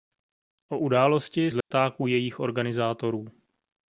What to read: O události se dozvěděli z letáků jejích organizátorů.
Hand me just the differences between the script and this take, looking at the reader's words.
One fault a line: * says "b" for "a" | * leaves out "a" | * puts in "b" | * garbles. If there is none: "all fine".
* leaves out "se dozvěděli"